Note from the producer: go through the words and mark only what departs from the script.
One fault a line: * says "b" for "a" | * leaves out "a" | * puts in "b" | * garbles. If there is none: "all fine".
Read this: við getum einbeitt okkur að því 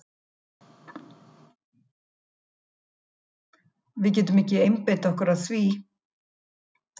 * puts in "ekki"